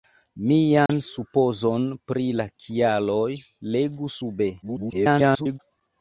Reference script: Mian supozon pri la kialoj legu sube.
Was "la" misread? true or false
false